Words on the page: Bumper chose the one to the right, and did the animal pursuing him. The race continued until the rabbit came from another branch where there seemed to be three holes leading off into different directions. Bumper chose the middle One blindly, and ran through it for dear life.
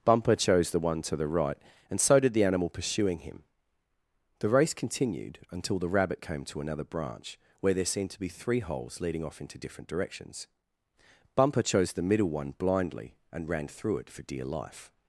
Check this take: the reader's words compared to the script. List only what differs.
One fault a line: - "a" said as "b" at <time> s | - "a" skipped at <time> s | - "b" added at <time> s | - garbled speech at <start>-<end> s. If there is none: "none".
- "so" added at 2.0 s
- "from" said as "to" at 6.5 s